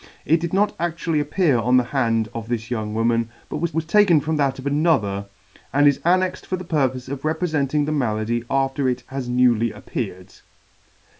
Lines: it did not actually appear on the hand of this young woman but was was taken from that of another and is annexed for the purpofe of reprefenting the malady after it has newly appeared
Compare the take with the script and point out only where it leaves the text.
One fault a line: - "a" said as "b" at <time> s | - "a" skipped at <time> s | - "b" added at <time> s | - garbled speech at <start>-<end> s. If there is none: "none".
none